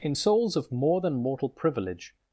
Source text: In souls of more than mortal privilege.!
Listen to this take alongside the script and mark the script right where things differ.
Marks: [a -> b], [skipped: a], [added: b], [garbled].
In souls of more than mortal privilege.!